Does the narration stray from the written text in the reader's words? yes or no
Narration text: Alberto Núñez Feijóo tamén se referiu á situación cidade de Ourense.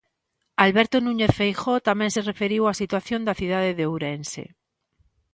yes